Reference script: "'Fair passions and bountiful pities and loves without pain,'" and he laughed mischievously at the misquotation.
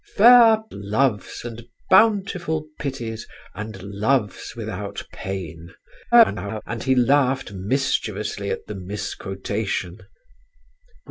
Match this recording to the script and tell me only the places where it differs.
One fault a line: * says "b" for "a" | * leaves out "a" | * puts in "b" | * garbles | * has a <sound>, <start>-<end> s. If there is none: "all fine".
* says "loves" for "passions"
* garbles